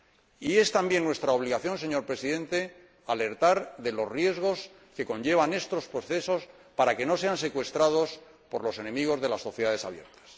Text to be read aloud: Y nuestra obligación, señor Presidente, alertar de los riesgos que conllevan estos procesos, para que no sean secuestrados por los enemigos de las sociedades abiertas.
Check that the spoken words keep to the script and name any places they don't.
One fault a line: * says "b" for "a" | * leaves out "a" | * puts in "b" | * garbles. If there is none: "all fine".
* puts in "es también"